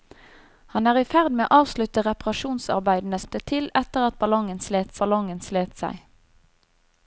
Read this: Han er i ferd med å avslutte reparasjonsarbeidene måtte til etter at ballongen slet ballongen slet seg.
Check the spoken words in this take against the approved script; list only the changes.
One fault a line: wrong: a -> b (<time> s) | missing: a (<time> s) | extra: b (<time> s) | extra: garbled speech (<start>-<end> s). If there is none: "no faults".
no faults